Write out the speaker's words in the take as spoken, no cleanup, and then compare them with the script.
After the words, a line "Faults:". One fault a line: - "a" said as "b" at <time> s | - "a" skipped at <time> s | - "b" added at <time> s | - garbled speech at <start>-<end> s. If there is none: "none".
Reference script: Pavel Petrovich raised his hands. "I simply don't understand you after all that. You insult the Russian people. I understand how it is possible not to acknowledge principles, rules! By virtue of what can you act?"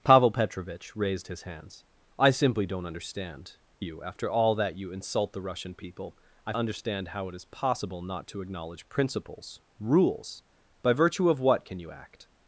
Pavel Petrovich raised his hands. "I simply don't understand you after all that. You insult the Russian people. I understand how it is possible not to acknowledge principles, rules! By virtue of what can you act?"
Faults:
none